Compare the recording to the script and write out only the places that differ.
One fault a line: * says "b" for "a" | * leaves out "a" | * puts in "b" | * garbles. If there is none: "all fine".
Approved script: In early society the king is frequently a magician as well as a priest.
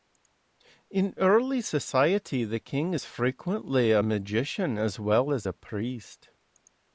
all fine